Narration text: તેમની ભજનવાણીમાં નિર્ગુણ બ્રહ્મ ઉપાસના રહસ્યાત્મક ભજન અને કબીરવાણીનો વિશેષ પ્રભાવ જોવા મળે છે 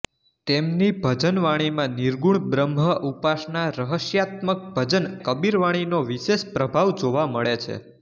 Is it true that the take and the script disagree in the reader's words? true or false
true